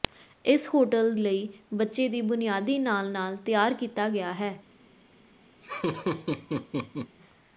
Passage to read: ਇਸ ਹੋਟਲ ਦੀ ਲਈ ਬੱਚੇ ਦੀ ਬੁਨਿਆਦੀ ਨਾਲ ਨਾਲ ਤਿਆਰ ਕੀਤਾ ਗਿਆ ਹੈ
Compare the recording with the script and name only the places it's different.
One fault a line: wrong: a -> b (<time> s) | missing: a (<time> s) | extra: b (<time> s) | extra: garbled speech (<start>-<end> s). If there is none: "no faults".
missing: ਦੀ (1.1 s)